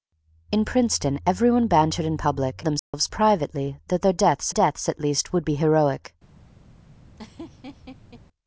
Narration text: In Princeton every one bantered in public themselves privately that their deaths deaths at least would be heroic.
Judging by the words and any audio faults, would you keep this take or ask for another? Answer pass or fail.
fail